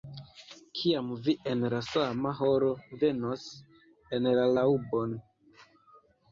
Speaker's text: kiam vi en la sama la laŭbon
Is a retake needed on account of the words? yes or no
yes